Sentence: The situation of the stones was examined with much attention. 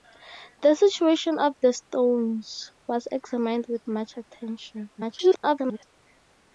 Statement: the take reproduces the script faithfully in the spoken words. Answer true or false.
false